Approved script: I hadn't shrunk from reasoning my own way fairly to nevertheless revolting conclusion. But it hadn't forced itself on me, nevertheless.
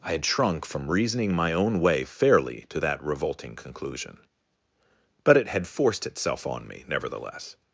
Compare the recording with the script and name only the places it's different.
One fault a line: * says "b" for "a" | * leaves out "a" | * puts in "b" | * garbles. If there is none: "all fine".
* says "had" for "hadn't"
* says "that" for "nevertheless"
* says "had" for "hadn't"